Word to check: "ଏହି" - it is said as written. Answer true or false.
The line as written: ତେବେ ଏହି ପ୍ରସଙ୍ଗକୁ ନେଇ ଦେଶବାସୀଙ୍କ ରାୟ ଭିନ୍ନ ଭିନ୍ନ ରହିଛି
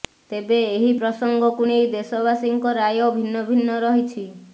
true